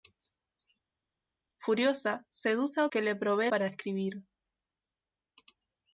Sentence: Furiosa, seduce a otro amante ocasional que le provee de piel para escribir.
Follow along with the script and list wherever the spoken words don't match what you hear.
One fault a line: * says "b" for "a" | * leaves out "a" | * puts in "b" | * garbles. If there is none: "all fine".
* leaves out "otro amante ocasional"
* leaves out "de piel"